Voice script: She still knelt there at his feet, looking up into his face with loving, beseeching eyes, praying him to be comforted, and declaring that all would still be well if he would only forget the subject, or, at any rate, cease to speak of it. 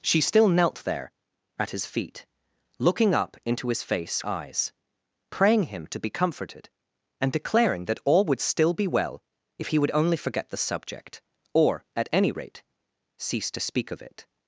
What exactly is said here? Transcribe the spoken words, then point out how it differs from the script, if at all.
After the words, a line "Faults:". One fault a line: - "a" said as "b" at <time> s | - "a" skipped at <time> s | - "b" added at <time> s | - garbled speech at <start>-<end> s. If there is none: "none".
She still knelt there at his feet, looking up into his face eyes, praying him to be comforted, and declaring that all would still be well if he would only forget the subject, or, at any rate, cease to speak of it.
Faults:
- "with loving beseeching" skipped at 4.2 s